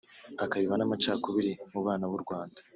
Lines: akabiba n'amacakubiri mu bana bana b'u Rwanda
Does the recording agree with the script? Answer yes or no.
no